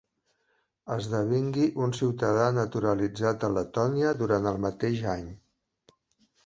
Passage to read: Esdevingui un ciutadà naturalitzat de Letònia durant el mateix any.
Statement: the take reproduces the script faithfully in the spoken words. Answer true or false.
true